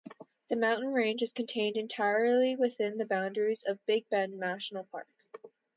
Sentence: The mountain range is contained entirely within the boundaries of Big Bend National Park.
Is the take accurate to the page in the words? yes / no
yes